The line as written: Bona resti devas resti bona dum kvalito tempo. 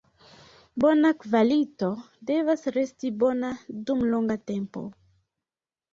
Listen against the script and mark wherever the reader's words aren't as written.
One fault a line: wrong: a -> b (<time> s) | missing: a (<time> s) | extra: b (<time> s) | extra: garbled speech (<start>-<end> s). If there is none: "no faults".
wrong: resti -> kvalito (1.2 s)
wrong: kvalito -> longa (4.2 s)